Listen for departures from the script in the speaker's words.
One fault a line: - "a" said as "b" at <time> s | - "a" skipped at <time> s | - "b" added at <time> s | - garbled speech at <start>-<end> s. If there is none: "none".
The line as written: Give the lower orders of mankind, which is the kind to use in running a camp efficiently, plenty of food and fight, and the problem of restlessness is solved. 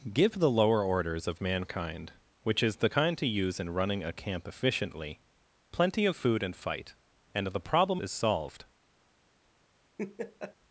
- "of restlessness" skipped at 8.0 s